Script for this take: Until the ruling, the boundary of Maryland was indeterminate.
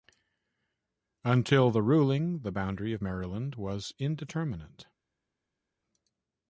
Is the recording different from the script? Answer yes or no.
no